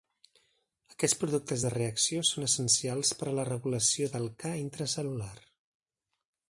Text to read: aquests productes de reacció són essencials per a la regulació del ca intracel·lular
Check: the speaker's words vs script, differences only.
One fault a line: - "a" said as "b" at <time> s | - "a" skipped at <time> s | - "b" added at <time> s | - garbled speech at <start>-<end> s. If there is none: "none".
none